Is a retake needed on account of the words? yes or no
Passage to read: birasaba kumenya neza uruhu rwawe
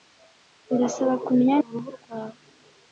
yes